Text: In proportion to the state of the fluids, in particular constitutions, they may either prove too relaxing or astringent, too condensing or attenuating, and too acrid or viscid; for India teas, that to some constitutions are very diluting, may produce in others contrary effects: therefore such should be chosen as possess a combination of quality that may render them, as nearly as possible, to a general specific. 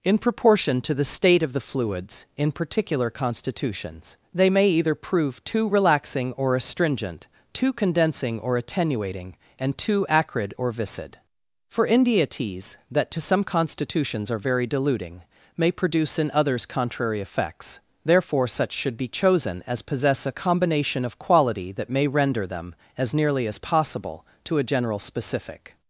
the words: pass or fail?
pass